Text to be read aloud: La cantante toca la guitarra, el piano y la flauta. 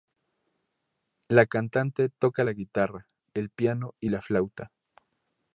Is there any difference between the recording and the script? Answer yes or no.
no